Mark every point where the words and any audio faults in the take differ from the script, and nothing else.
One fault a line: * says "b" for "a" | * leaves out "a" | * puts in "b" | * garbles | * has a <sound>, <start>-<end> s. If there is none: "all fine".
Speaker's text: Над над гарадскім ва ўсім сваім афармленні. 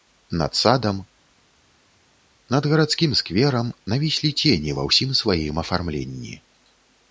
* puts in "садам"
* puts in "скверам навіслі цені"